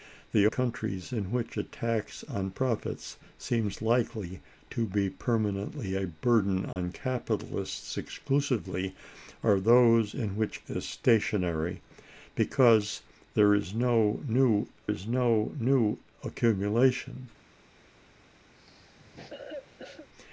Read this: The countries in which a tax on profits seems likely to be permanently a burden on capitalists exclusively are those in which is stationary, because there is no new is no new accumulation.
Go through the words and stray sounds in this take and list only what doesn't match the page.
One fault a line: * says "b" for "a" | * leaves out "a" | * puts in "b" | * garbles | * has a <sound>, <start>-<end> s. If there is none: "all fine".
* has a dropout, 6.7-6.8 s
* has a cough, 18.5-20.1 s